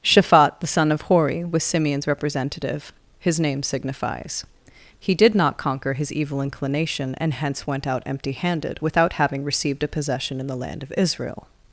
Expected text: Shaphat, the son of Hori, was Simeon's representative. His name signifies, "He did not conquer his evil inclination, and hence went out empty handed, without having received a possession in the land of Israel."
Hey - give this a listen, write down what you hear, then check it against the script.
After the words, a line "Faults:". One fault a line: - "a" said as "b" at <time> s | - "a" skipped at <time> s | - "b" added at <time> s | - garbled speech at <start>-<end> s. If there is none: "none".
Shaphat, the son of Hori, was Simeon's representative. His name signifies, "He did not conquer his evil inclination, and hence went out empty handed, without having received a possession in the land of Israel."
Faults:
none